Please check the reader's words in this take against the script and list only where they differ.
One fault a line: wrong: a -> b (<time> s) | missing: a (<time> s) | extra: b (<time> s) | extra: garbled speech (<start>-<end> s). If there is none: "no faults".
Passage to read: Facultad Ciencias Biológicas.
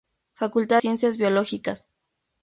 no faults